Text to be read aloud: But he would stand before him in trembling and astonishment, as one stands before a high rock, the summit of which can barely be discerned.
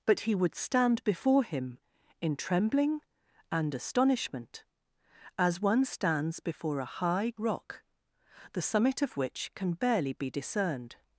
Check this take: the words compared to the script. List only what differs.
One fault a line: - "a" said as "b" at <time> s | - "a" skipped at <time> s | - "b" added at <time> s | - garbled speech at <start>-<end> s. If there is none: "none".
none